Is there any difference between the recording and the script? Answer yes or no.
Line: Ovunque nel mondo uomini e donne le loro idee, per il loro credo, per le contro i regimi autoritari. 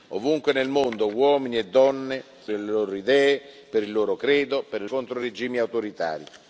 no